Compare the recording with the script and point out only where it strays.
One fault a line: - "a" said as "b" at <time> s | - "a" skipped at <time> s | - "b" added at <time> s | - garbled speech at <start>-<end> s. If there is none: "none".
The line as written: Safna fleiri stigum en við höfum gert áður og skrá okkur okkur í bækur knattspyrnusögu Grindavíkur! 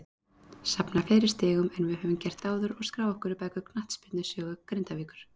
- "okkur" skipped at 3.3 s